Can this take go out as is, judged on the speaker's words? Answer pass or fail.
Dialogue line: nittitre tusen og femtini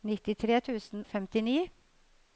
pass